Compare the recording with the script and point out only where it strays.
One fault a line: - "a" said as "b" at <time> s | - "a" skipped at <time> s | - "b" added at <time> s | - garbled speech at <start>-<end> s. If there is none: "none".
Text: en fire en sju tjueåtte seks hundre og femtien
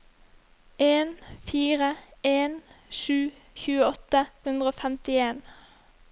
- "seks" skipped at 4.2 s